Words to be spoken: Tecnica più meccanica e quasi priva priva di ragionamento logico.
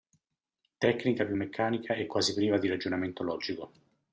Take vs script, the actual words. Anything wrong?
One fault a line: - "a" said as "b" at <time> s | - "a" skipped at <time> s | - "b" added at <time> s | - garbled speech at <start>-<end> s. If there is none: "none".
- "priva" skipped at 2.6 s